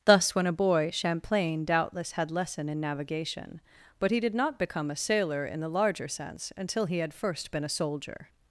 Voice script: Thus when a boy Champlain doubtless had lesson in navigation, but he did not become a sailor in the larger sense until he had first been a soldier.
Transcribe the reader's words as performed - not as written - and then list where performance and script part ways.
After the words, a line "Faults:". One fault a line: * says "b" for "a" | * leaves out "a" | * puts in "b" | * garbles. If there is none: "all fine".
Thus when a boy Champlain doubtless had lesson in navigation, but he did not become a sailor in the larger sense until he had first been a soldier.
Faults:
all fine